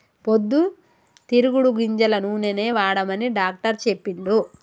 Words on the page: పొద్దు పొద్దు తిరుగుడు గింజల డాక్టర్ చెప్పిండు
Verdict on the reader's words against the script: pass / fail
fail